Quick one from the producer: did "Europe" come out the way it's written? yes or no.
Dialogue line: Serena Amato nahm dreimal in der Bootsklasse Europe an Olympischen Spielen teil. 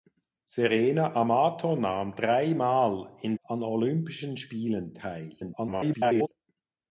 no